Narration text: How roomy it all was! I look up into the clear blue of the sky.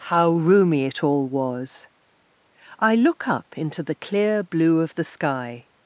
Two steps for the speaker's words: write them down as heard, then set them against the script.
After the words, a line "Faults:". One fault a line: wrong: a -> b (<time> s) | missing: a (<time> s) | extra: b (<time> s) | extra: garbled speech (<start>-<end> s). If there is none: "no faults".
How roomy it all was! I look up into the clear blue of the sky.
Faults:
no faults